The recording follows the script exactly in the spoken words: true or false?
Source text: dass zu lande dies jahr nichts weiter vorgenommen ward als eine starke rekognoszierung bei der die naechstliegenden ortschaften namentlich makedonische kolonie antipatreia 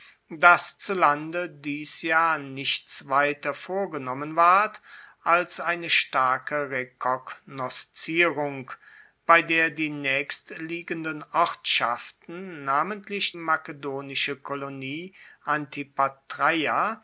true